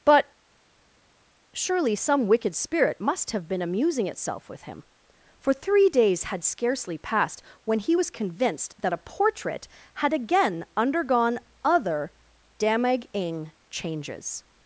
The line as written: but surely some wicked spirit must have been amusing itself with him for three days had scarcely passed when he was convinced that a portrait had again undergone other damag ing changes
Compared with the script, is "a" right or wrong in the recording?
right